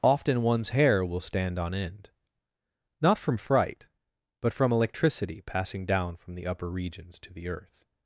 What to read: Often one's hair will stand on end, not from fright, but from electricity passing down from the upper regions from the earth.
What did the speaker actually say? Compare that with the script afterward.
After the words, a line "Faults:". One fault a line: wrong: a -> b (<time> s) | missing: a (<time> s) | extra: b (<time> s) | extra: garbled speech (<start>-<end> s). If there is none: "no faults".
Often one's hair will stand on end, not from fright, but from electricity passing down from the upper regions to the earth.
Faults:
wrong: from -> to (7.2 s)